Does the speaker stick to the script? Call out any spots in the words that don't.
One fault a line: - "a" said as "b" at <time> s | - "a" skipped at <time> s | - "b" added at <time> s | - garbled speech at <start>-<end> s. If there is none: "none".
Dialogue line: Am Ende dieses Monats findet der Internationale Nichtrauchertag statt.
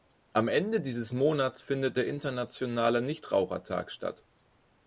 none